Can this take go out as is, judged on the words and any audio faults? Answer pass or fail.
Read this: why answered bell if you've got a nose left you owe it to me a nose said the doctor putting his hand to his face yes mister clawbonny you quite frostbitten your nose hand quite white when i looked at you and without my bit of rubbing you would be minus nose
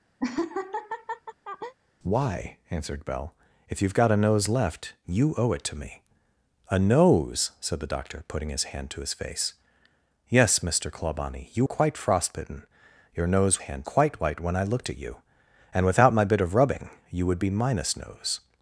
fail